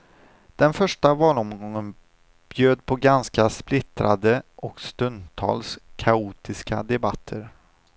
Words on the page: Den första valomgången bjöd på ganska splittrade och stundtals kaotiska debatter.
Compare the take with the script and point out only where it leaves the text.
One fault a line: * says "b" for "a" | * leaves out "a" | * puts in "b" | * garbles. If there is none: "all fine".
all fine